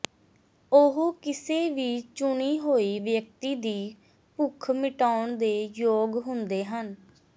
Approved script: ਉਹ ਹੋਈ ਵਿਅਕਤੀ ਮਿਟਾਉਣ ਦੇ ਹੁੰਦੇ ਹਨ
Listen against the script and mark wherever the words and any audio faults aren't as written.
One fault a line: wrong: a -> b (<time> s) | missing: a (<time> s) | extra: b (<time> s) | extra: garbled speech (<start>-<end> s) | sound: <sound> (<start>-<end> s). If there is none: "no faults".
extra: ਕਿਸੇ ਵੀ ਚੁਣੀ (1.2 s)
extra: ਦੀ ਭੁੱਖ (3.6 s)
extra: ਯੋਗ (5.8 s)